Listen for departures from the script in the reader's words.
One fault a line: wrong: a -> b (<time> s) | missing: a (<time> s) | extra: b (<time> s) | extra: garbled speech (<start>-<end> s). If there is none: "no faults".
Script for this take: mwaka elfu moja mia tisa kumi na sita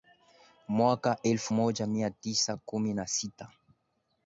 no faults